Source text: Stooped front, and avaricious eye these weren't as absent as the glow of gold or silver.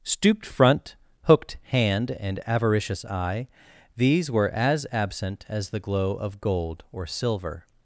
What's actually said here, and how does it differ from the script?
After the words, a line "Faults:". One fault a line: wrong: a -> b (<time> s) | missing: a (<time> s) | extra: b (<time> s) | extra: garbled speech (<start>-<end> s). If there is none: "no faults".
Stooped front, hooked hand and avaricious eye these were as absent as the glow of gold or silver.
Faults:
extra: hooked hand (1.2 s)
wrong: weren't -> were (4.3 s)